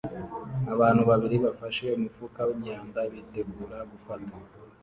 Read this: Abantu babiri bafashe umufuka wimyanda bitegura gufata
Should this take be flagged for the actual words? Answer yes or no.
no